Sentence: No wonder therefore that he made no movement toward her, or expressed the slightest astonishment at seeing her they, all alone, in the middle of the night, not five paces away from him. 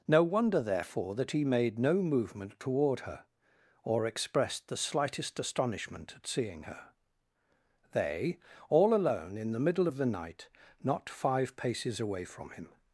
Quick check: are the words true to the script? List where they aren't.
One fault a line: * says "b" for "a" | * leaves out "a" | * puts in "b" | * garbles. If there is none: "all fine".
all fine